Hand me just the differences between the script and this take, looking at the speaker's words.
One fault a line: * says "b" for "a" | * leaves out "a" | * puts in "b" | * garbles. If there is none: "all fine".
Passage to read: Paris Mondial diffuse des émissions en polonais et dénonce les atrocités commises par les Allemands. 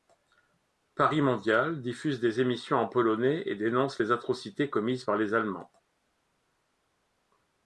all fine